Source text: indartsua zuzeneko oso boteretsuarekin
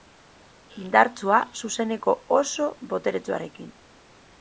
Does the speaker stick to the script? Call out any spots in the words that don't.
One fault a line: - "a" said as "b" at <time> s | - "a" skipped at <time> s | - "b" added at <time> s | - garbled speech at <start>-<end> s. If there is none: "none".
none